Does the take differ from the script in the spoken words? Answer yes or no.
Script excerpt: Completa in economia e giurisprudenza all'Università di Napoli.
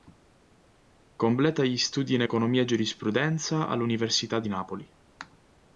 yes